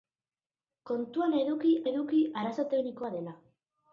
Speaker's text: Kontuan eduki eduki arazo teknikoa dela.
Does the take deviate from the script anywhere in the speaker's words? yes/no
no